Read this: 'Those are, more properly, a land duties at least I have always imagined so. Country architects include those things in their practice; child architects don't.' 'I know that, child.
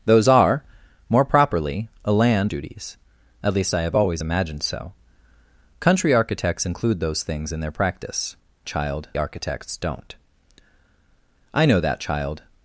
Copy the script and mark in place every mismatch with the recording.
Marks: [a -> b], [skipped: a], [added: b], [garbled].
'Those are, more properly, a land duties at least I have always imagined so. Country architects include those things in their practice; child architects don't.' 'I know that, child.